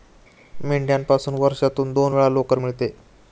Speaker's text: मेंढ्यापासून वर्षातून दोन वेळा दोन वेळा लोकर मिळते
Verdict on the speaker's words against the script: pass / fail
fail